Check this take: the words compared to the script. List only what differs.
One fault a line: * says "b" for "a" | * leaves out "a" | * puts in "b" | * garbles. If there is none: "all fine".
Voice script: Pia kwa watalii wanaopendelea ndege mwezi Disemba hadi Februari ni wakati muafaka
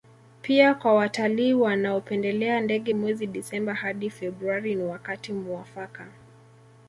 all fine